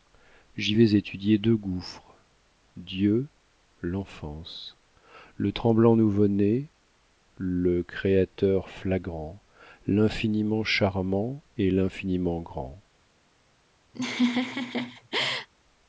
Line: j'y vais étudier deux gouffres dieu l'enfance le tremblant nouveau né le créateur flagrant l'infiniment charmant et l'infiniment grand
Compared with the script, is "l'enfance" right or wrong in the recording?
right